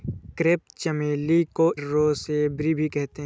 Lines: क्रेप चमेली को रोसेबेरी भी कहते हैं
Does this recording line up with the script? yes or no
yes